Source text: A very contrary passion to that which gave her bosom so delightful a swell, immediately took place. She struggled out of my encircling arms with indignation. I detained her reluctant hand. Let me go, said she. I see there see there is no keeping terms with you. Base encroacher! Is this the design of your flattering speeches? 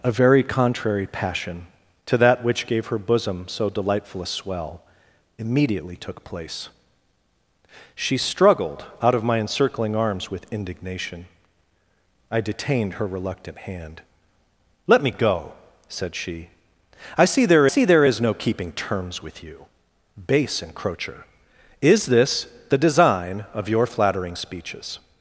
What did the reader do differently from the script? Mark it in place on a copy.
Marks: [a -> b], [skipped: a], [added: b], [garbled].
A very contrary passion to that which gave her bosom so delightful a swell, immediately took place. She struggled out of my encircling arms with indignation. I detained her reluctant hand. Let me go, said she. I see there see there is no keeping terms with you. Base encroacher! Is this the design of your flattering speeches?